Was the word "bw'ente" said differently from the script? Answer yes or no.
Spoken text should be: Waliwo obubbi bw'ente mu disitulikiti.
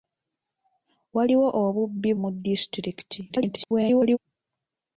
yes